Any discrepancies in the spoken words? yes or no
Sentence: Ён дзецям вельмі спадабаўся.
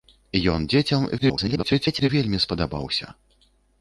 yes